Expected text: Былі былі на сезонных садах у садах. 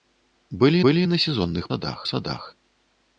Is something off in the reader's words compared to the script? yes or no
no